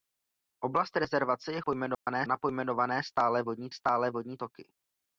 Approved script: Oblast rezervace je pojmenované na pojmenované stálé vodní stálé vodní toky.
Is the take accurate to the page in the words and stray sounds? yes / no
no